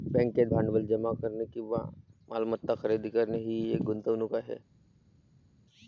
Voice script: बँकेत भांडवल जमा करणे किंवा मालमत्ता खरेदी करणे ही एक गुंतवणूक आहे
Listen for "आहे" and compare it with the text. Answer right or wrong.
right